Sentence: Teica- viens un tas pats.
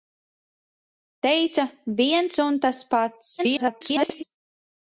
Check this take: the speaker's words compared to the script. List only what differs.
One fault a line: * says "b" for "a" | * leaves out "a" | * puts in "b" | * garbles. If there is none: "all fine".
* garbles